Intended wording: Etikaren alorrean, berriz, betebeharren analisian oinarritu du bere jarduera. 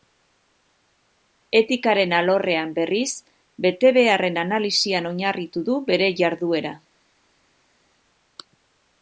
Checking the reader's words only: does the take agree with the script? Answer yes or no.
yes